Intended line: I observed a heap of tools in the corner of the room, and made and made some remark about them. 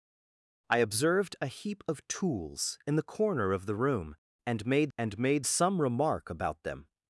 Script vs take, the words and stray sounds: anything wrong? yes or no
no